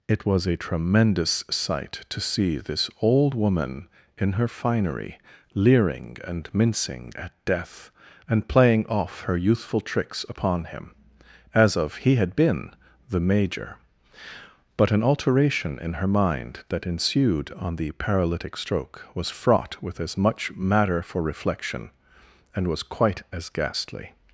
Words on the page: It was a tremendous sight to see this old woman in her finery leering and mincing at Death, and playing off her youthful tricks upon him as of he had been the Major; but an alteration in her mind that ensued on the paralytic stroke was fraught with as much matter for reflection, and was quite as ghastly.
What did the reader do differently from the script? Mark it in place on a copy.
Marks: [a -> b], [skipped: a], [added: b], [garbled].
It was a tremendous sight to see this old woman in her finery leering and mincing at Death, and playing off her youthful tricks upon him as of he had been the Major; but an alteration in her mind that ensued on the paralytic stroke was fraught with as much matter for reflection, and was quite as ghastly.